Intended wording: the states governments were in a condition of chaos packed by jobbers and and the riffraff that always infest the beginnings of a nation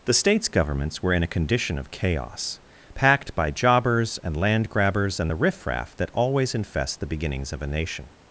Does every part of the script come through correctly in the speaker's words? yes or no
no